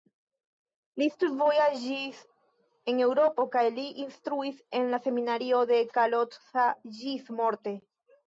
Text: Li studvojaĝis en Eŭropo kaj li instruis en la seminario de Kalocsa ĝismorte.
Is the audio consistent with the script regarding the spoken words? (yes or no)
yes